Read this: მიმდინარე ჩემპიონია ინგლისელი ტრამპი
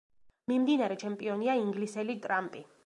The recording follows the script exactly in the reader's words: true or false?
true